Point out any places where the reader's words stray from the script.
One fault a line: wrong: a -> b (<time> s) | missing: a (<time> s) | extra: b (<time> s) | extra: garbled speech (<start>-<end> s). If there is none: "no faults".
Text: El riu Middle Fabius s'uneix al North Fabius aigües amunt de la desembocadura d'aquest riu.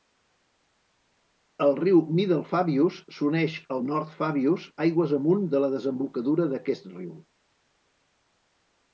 no faults